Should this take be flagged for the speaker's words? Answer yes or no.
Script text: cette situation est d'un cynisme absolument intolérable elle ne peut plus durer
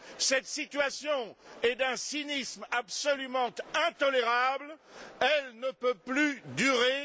no